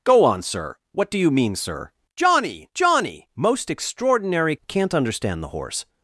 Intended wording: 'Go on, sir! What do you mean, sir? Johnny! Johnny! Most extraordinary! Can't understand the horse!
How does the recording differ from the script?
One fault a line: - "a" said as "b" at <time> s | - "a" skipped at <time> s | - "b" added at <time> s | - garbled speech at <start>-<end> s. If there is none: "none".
none